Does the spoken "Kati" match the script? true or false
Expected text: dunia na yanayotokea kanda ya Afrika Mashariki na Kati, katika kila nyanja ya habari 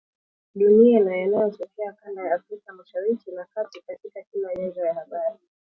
true